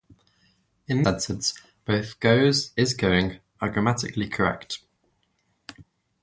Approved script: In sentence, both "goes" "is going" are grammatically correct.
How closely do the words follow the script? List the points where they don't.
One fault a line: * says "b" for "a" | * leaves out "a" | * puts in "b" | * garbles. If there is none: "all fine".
all fine